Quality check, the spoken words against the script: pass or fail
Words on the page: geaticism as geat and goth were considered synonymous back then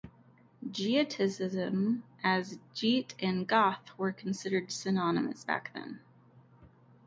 pass